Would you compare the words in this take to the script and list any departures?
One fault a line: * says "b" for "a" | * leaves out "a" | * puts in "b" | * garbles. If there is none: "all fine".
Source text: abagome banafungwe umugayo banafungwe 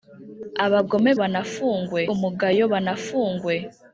all fine